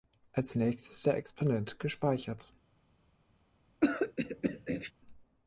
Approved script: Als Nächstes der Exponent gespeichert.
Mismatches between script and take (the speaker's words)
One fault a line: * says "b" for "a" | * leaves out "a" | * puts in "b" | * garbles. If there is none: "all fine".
all fine